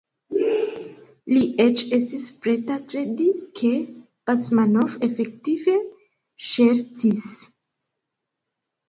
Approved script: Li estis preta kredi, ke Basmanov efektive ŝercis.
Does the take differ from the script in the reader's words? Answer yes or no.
yes